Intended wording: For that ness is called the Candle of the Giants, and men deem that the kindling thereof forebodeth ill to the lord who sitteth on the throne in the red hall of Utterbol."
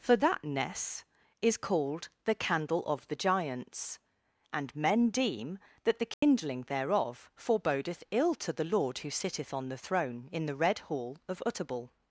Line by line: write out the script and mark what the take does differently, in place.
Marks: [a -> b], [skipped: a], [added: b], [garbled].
For that ness is called the Candle of the Giants, and men deem that the kindling thereof forebodeth ill to the lord who sitteth on the throne in the red hall of Utterbol."